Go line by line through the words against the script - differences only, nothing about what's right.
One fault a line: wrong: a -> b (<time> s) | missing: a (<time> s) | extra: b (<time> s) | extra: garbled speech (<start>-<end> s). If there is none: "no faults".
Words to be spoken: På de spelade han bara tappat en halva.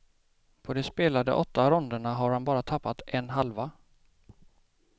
extra: åtta ronderna har (1.3 s)